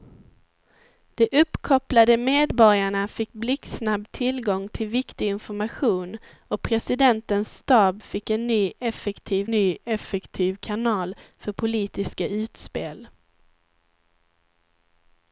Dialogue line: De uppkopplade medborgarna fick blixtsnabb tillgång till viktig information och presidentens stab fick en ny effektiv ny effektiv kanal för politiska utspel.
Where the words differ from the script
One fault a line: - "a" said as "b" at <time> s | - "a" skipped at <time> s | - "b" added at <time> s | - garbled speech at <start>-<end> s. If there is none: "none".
none